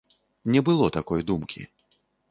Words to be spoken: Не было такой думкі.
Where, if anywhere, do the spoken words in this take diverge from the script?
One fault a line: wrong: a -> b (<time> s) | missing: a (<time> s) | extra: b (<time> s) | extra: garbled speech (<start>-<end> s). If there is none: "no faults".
no faults